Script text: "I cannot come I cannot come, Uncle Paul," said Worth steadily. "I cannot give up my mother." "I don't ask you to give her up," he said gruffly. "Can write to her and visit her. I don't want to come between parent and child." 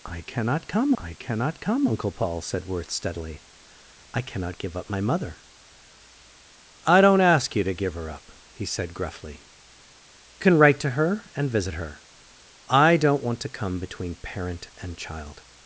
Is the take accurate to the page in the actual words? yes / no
yes